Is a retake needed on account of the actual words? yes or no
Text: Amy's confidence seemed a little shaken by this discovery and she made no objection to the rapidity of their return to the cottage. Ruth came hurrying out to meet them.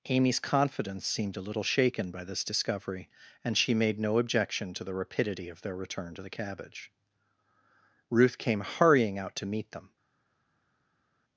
yes